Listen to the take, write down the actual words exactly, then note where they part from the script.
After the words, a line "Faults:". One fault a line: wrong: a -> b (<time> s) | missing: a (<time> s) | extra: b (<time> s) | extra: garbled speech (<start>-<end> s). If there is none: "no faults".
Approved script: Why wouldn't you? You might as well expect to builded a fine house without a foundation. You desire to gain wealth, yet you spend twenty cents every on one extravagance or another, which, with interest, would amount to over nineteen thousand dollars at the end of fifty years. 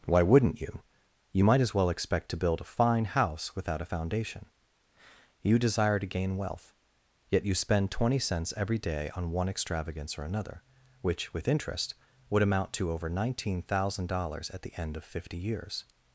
Why wouldn't you? You might as well expect to build a fine house without a foundation. You desire to gain wealth, yet you spend twenty cents every day on one extravagance or another, which, with interest, would amount to over nineteen thousand dollars at the end of fifty years.
Faults:
wrong: builded -> build (2.4 s)
extra: day (8.8 s)